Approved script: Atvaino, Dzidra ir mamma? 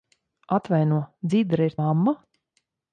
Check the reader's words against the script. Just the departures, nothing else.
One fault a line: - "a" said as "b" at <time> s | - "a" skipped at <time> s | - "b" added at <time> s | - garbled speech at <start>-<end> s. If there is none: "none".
none